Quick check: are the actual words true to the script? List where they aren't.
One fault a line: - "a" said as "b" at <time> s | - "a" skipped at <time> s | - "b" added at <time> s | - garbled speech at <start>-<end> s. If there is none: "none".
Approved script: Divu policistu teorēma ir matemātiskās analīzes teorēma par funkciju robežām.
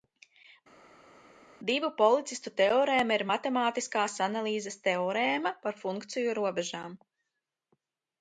none